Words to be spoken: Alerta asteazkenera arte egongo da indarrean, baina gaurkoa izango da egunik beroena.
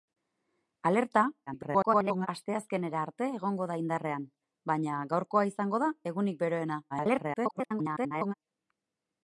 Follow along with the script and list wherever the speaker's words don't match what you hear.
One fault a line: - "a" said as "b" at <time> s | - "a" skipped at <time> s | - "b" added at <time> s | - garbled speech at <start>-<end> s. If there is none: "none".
- garbled speech at 1.5-2.3 s
- garbled speech at 6.9-8.3 s